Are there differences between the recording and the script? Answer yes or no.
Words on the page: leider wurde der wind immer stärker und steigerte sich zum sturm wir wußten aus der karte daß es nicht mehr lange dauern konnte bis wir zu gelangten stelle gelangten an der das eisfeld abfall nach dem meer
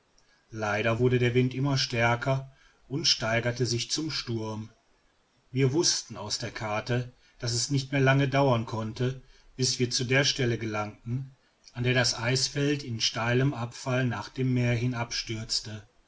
yes